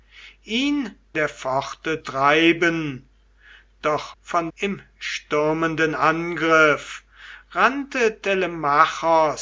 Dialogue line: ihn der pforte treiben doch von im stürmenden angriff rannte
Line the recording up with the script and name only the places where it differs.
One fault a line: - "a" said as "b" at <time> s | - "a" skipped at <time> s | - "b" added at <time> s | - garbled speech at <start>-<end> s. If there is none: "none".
none